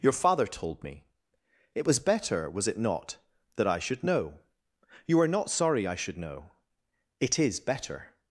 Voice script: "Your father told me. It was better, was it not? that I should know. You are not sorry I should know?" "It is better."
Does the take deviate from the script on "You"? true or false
false